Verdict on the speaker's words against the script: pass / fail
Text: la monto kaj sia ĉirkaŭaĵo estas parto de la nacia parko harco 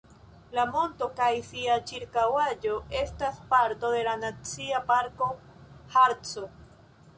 pass